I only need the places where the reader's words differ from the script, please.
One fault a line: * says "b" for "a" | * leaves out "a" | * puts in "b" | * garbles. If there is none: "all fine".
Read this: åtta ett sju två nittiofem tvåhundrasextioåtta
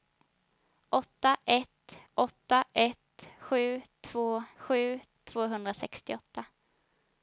* puts in "åtta ett"
* says "sju" for "nittiofem"